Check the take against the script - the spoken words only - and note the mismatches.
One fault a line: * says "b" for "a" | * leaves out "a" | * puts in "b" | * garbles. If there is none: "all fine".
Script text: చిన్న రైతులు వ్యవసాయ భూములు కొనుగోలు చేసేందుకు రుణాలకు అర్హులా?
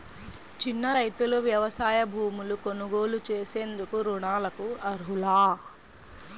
all fine